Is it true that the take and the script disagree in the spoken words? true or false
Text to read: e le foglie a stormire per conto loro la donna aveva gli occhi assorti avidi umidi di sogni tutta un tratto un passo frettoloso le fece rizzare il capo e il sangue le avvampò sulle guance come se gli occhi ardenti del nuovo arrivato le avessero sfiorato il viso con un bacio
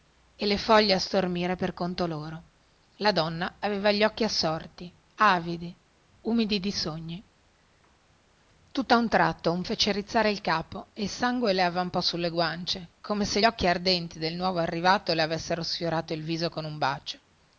true